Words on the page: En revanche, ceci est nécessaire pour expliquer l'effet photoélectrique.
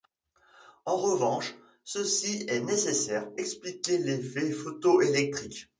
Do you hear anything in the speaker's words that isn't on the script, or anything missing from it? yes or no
yes